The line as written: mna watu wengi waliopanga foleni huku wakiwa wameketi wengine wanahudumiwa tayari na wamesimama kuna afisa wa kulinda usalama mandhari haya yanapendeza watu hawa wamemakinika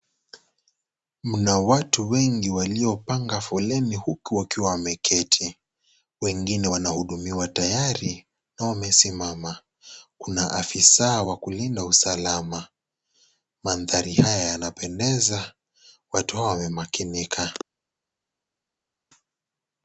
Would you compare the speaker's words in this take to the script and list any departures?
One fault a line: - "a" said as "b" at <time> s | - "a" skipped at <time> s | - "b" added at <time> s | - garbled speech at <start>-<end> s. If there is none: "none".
none